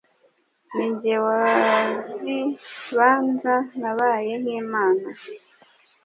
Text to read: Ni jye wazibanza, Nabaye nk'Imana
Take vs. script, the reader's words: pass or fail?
pass